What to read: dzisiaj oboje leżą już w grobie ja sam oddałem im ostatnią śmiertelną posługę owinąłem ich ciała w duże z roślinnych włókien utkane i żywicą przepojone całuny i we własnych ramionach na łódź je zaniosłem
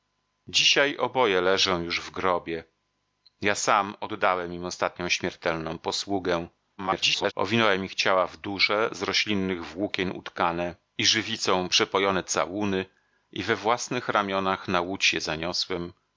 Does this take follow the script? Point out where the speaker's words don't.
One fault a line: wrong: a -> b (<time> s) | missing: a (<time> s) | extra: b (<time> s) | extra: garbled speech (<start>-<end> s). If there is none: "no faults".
extra: garbled speech (6.8-7.3 s)